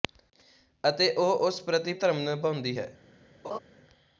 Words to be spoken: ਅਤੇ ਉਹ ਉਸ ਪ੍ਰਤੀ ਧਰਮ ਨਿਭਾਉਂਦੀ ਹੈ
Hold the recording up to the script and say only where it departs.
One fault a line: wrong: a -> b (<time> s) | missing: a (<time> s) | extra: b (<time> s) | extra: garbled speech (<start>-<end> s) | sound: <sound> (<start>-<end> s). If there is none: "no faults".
sound: laugh (3.4-3.6 s)